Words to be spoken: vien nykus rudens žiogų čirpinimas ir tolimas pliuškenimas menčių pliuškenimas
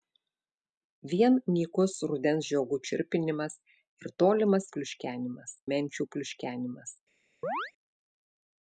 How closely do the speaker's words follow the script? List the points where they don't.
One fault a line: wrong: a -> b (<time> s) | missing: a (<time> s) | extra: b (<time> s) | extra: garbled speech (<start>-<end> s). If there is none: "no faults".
no faults